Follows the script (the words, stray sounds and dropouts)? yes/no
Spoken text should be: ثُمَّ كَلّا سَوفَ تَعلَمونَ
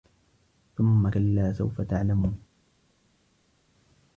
yes